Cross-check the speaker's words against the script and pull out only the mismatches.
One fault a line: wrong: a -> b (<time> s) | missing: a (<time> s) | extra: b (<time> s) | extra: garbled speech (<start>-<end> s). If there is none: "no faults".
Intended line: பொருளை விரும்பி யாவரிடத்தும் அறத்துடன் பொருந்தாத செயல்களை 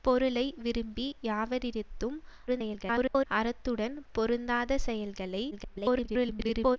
extra: garbled speech (2.5-3.3 s)
extra: garbled speech (5.5-6.8 s)